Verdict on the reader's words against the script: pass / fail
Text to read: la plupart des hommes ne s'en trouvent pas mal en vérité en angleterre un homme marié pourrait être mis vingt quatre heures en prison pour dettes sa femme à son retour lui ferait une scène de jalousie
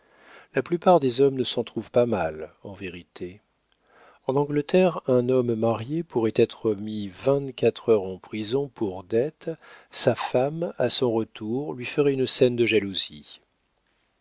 pass